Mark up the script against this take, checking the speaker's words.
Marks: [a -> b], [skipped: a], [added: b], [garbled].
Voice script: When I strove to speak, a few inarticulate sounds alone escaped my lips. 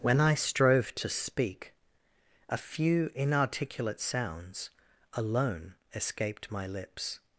When I strove to speak, a few inarticulate sounds alone escaped my lips.